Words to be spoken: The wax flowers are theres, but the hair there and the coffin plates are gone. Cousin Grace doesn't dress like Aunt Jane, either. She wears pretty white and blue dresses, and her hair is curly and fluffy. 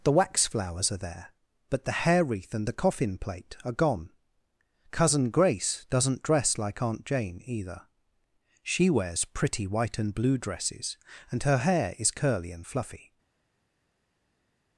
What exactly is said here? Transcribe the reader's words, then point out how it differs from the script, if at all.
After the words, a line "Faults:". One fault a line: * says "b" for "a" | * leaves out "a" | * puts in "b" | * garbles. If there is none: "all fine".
The wax flowers are there, but the hair wreath and the coffin plate are gone. Cousin Grace doesn't dress like Aunt Jane, either. She wears pretty white and blue dresses, and her hair is curly and fluffy.
Faults:
* says "there" for "theres"
* says "wreath" for "there"
* says "plate" for "plates"